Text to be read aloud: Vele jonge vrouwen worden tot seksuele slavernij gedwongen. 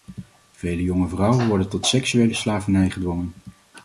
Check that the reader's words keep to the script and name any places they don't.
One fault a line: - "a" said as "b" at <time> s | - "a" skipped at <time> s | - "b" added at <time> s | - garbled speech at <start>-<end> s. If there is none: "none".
none